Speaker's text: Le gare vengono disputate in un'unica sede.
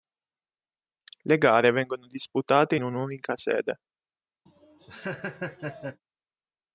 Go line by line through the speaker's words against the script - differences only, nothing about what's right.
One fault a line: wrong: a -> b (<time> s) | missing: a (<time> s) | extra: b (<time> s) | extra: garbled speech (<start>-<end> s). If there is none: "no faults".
no faults